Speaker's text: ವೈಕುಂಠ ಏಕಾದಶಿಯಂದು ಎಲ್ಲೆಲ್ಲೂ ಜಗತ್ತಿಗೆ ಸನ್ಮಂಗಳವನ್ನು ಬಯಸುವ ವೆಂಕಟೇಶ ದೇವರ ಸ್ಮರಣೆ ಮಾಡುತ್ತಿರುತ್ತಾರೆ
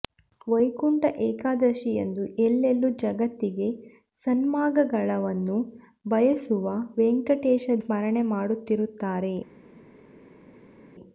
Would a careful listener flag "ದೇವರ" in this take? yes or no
yes